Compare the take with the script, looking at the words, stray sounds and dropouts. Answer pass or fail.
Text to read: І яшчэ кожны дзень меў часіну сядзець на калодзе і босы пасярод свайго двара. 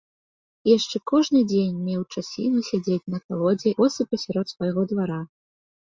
fail